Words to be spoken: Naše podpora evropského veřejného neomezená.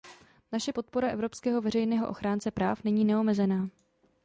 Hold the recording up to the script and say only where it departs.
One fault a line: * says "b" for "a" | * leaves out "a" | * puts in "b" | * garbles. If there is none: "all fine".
* puts in "ochránce práv není"